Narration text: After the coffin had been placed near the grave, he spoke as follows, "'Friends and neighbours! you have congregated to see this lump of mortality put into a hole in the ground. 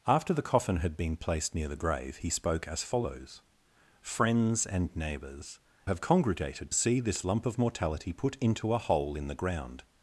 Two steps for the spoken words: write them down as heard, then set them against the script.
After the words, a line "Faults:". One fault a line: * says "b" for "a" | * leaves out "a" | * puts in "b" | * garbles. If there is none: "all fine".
After the coffin had been placed near the grave, he spoke as follows, "'Friends and neighbours! have congregated see this lump of mortality put into a hole in the ground.
Faults:
* leaves out "you"
* leaves out "to"